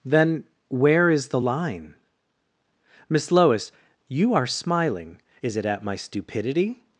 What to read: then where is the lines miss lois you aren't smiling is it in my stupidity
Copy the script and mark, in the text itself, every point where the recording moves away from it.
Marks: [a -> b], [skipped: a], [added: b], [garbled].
then where is the [lines -> line] miss lois you [aren't -> are] smiling is it [in -> at] my stupidity